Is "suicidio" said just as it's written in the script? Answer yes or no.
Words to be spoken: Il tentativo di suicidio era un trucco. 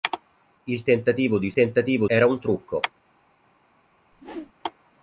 no